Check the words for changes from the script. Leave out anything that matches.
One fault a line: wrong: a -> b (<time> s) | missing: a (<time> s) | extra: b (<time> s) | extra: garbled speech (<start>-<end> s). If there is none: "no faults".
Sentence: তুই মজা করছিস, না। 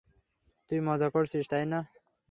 extra: তাই (1.5 s)